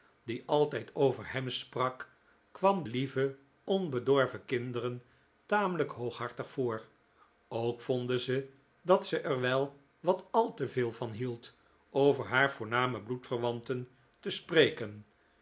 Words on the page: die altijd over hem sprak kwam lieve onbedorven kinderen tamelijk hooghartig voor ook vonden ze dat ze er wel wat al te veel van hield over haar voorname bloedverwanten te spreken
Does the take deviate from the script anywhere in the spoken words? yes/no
no